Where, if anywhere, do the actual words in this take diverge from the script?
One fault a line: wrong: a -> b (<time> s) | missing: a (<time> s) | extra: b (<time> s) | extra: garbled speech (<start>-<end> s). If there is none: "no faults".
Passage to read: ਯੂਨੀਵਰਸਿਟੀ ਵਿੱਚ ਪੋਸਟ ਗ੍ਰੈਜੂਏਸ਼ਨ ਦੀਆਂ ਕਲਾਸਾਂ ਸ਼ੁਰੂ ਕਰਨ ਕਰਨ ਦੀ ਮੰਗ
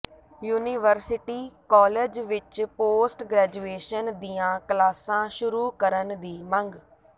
extra: ਕਾਲਜ (1.7 s)
missing: ਕਰਨ (6.2 s)